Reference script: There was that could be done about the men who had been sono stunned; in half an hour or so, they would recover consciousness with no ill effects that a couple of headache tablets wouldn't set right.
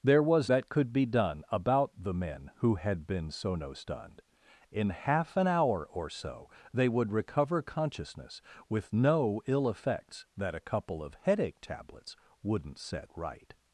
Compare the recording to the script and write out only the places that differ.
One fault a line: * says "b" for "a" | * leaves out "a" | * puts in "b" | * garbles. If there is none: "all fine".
all fine